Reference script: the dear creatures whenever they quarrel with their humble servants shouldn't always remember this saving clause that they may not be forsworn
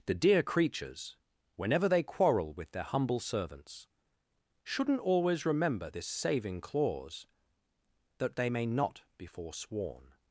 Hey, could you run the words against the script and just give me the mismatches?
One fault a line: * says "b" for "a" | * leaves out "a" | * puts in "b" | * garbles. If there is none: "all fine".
all fine